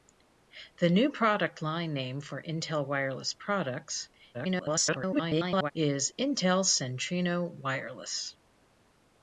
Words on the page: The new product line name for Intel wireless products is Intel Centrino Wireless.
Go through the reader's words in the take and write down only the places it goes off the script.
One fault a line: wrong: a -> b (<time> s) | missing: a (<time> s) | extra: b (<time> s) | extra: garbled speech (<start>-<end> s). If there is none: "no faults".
extra: garbled speech (4.3-5.7 s)